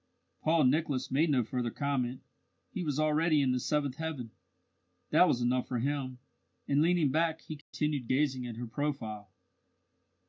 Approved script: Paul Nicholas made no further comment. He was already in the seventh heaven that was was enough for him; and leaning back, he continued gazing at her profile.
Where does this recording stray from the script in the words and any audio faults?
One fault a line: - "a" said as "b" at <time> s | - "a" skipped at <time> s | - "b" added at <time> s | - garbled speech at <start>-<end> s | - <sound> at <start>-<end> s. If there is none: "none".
- "was" skipped at 5.4 s
- dropout at 7.6-7.7 s